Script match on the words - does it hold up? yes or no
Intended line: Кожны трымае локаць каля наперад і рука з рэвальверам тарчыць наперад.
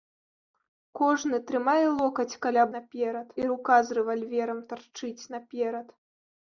yes